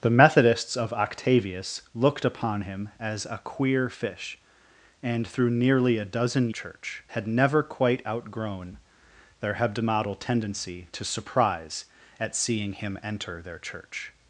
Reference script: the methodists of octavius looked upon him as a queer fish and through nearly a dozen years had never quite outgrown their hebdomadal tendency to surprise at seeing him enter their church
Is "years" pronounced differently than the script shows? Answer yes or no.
yes